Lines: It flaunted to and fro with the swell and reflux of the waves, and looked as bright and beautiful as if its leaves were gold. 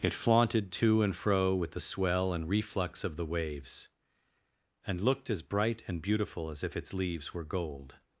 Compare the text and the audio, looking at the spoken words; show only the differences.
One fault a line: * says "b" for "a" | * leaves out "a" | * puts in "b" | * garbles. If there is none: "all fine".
all fine